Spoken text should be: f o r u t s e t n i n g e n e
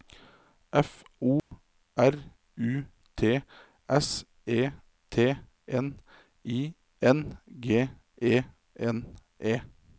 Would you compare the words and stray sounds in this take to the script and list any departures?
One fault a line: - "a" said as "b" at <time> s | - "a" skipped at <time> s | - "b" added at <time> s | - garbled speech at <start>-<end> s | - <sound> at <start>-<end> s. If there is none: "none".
- dropout at 1.4-1.5 s